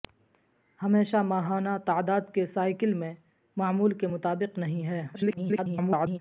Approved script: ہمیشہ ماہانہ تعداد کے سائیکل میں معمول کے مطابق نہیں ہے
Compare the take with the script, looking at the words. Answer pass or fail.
fail